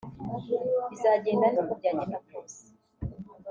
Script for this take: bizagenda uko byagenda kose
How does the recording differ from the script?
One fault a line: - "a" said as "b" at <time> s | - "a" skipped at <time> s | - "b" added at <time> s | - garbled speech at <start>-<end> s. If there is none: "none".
none